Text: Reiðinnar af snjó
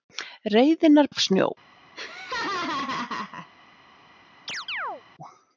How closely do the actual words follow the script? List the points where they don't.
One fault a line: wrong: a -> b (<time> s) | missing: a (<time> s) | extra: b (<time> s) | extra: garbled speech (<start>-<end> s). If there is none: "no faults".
no faults